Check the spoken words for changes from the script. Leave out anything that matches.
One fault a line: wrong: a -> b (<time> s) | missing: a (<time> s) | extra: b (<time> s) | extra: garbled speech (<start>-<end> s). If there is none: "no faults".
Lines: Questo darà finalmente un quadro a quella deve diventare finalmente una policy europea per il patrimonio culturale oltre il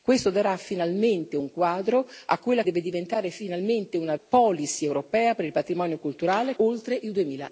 no faults